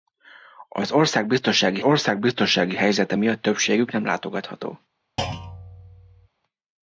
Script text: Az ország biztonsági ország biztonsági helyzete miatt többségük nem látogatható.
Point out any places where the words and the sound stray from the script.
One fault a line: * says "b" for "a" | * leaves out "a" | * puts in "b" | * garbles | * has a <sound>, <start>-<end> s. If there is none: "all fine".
* has a thud, 5.2-6.3 s